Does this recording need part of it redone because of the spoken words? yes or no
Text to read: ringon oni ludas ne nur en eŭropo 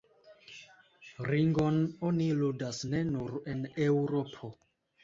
no